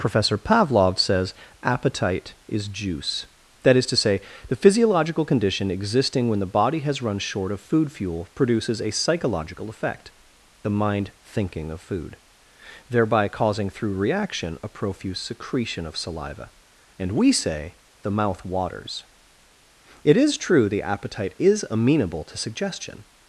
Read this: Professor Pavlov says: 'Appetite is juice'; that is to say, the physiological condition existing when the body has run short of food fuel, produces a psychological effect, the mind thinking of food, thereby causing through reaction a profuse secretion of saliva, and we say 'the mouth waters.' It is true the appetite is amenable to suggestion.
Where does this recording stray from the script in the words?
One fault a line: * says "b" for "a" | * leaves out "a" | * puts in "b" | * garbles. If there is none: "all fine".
all fine